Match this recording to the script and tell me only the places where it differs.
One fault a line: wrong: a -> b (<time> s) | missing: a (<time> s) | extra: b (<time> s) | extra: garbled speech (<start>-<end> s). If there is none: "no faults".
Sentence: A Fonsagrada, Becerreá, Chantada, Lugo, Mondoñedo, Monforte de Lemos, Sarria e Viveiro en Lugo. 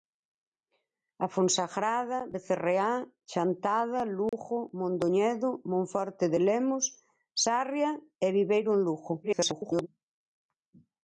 extra: garbled speech (9.2-9.9 s)